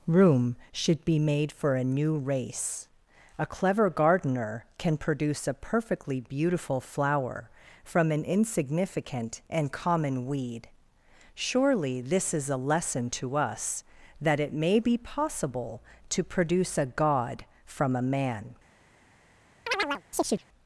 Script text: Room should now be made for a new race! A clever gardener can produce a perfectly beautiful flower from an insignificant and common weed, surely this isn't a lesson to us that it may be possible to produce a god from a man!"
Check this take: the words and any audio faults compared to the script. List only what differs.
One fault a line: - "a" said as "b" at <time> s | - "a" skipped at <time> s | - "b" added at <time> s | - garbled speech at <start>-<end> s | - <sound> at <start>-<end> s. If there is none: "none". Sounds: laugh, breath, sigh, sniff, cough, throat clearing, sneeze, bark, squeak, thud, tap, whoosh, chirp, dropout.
- "now" skipped at 1.0 s
- "isn't" said as "is" at 12.3 s
- chirp at 19.7-20.4 s